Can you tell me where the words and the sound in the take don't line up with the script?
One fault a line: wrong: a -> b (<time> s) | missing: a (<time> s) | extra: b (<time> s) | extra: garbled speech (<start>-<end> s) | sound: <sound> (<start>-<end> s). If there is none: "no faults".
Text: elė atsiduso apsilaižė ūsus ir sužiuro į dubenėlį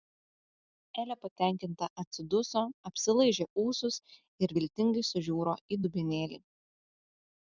extra: patenkinta (1.2 s)
extra: viltingai (4.6 s)